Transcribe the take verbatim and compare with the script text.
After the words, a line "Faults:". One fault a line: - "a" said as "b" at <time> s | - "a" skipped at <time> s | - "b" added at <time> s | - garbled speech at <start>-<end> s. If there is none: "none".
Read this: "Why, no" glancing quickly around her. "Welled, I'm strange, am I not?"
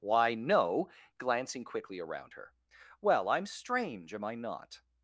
"Why, no" glancing quickly around her. "Well, I'm strange, am I not?"
Faults:
- "Welled" said as "Well" at 3.0 s